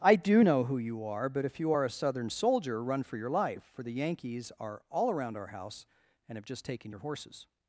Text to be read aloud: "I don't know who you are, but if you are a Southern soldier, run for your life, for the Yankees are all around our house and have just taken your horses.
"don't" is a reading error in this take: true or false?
true